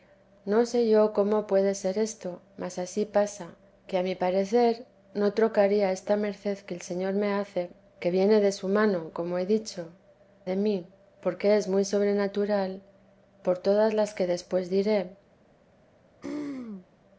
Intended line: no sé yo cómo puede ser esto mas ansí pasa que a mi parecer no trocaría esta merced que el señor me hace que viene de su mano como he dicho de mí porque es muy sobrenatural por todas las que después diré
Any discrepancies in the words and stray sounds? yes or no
yes